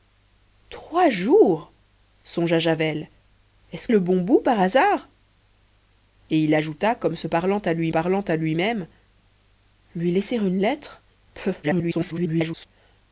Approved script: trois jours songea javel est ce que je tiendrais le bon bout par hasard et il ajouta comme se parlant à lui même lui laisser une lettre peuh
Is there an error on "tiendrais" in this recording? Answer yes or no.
yes